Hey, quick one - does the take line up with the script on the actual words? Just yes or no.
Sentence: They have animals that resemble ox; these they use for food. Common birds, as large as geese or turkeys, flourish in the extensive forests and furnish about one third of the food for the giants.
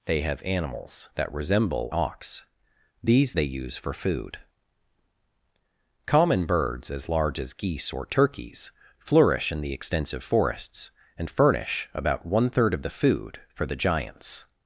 yes